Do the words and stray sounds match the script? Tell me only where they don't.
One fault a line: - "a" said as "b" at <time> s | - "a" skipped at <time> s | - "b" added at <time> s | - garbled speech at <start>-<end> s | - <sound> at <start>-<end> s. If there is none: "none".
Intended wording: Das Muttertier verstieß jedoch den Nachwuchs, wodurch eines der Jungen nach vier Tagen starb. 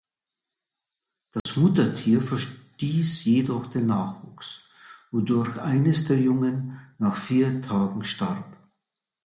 - dropout at 1.4-1.5 s